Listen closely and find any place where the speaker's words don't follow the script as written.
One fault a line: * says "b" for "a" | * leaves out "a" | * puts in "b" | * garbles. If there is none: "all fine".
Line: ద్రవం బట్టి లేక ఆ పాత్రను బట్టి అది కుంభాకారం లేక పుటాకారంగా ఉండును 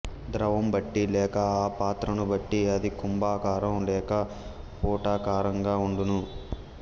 all fine